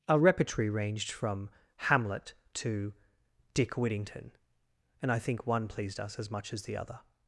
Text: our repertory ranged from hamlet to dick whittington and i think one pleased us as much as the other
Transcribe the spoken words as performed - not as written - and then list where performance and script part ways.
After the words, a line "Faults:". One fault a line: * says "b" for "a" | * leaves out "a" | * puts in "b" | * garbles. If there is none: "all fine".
our repertory ranged from hamlet to dick whittington and i think one pleased us as much as the other
Faults:
all fine